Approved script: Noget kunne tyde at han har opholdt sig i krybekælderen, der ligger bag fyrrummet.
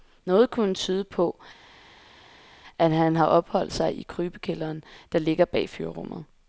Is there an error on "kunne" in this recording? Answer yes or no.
no